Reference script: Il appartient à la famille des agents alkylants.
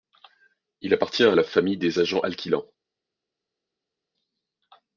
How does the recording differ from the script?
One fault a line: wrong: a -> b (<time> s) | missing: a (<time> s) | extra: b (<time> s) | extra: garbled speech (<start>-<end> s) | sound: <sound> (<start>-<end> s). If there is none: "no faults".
no faults